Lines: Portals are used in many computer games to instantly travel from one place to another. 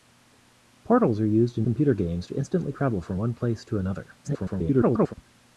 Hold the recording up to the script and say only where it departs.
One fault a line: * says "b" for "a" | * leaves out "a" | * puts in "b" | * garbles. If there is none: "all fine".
* leaves out "many"
* garbles